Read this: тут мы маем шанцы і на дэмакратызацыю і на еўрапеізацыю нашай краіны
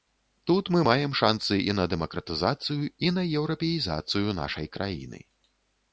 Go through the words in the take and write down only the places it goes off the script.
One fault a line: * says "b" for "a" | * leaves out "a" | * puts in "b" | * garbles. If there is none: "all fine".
all fine